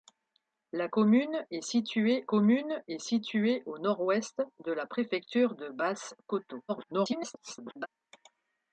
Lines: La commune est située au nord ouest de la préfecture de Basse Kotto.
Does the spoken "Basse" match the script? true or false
true